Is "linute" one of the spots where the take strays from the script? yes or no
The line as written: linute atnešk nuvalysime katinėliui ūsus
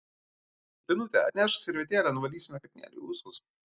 no